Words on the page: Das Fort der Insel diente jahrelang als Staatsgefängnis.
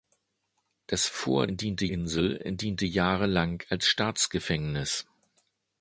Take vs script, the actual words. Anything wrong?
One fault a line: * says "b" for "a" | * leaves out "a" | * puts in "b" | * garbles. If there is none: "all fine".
* says "diente" for "der"